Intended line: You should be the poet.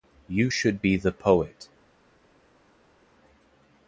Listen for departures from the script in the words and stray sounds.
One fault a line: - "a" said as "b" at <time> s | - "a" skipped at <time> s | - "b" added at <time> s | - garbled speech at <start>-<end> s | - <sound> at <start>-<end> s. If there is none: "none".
none